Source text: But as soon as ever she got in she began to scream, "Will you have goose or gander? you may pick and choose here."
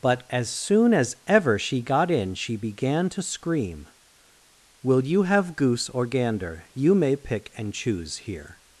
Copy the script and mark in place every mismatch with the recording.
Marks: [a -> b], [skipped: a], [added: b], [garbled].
But as soon as ever she got in she began to scream, "Will you have goose or gander? you may pick and choose here."